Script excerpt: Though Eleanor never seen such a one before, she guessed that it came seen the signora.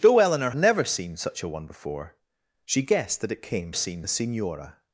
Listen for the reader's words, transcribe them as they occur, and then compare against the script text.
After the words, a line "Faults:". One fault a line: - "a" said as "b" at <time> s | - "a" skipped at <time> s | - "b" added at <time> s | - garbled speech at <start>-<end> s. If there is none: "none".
Though Eleanor never seen such a one before, she guessed that it came seen the signora.
Faults:
none